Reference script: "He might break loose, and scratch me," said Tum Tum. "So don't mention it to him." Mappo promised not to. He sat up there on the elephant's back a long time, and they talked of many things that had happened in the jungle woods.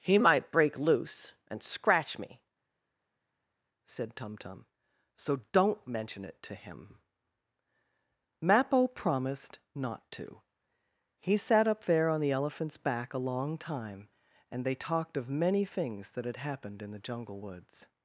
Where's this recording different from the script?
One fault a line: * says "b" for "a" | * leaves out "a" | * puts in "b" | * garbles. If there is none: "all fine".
all fine